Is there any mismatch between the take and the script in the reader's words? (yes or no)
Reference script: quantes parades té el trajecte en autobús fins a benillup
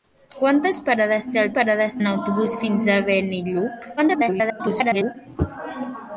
yes